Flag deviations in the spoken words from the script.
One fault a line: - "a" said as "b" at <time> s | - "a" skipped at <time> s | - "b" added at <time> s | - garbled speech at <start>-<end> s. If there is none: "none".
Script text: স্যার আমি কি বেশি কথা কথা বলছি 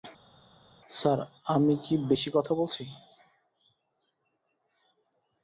- "কথা" skipped at 2.5 s